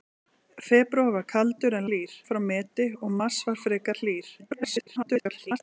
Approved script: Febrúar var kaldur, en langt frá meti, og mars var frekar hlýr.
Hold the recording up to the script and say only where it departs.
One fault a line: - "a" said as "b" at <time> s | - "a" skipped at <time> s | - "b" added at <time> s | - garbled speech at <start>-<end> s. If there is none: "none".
- "langt" said as "hlýr" at 1.9 s
- garbled speech at 4.4-5.6 s